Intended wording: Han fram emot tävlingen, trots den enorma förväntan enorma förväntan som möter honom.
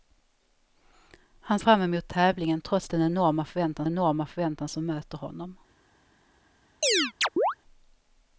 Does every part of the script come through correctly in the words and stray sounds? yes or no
no